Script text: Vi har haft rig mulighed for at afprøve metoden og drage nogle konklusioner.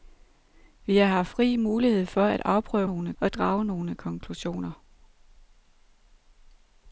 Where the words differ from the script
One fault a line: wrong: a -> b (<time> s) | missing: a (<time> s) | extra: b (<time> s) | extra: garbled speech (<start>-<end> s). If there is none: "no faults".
wrong: metoden -> nogle (2.8 s)